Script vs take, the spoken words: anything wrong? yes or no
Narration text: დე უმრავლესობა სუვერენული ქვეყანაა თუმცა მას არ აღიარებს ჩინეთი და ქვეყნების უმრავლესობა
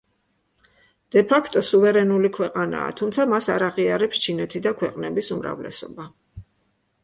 yes